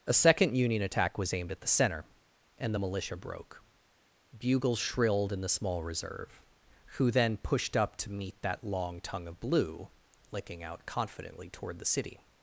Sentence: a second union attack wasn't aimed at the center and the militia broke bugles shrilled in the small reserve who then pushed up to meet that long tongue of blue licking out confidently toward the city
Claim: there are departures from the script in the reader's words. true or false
true